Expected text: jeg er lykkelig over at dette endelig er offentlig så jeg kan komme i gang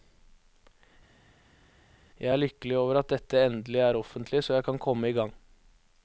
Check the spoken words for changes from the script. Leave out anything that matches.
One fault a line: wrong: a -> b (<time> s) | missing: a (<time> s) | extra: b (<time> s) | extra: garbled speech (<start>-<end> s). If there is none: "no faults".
no faults